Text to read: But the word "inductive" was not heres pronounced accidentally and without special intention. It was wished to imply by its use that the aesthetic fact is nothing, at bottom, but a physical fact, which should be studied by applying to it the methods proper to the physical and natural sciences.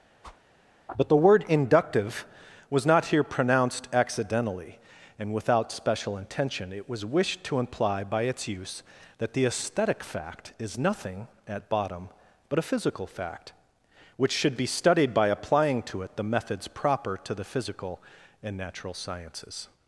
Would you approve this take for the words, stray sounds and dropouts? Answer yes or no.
no